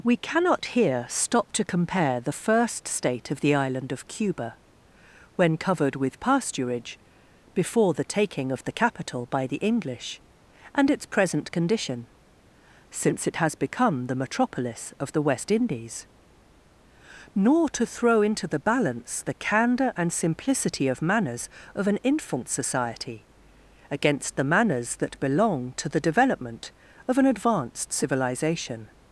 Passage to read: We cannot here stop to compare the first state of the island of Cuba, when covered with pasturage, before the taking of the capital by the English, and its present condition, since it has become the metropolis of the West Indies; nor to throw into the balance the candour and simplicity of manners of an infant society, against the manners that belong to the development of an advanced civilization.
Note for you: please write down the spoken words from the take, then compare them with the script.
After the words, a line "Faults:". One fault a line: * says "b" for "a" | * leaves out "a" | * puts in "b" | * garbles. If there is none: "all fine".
We cannot here stop to compare the first state of the island of Cuba, when covered with pasturage, before the taking of the capital by the English, and its present condition, since it has become the metropolis of the West Indies; nor to throw into the balance the candour and simplicity of manners of an infant society, against the manners that belong to the development of an advanced civilization.
Faults:
all fine